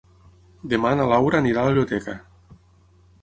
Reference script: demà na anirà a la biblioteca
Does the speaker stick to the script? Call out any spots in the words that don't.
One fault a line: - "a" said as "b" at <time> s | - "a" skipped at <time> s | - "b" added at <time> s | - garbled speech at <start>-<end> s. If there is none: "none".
- "laura" added at 1.1 s